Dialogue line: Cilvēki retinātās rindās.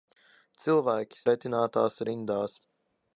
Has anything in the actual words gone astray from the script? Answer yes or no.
no